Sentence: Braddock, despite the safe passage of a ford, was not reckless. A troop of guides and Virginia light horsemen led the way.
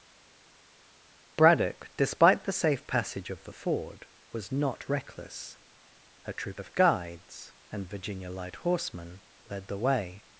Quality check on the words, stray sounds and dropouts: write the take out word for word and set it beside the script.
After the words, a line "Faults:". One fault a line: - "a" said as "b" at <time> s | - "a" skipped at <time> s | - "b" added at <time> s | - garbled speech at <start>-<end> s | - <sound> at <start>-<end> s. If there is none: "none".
Braddock, despite the safe passage of the ford, was not reckless. A troop of guides and Virginia light horsemen led the way.
Faults:
- "a" said as "the" at 3.4 s